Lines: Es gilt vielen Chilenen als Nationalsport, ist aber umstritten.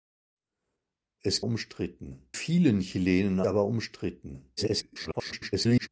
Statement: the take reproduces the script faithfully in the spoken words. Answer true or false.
false